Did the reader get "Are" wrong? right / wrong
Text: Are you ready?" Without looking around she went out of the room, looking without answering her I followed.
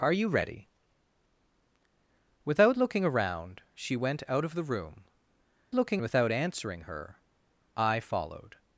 right